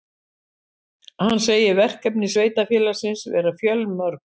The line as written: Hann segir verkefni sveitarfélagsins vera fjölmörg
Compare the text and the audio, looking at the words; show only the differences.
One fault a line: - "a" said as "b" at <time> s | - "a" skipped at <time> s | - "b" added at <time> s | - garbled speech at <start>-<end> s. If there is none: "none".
none